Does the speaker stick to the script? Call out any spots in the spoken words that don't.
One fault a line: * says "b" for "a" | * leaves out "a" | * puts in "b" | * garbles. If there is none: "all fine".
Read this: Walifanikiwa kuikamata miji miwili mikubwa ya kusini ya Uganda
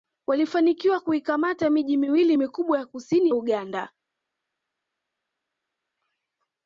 * leaves out "ya"